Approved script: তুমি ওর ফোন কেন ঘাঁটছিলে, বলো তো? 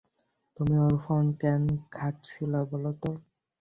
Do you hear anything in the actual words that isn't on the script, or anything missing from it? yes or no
no